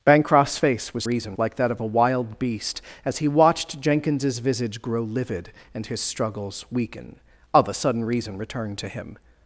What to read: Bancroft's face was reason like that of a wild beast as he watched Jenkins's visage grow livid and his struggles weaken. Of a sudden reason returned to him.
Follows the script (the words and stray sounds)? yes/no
yes